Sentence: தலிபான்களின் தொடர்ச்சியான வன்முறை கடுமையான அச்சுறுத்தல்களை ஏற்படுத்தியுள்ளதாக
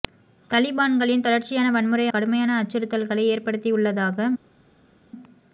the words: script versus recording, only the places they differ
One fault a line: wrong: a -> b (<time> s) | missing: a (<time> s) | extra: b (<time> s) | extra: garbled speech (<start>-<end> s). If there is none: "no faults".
no faults